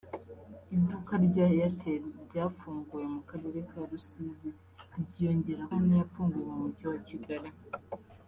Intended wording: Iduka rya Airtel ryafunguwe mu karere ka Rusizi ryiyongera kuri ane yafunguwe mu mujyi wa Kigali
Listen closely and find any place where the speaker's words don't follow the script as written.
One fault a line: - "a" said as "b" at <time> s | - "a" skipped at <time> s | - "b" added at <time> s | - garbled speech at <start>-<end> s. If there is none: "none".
- "kuri" skipped at 5.6 s